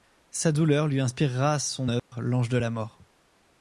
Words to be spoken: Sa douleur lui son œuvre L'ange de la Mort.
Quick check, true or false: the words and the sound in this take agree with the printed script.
false